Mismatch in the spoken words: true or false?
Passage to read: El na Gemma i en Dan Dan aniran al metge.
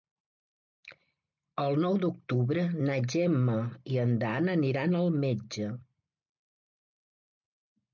true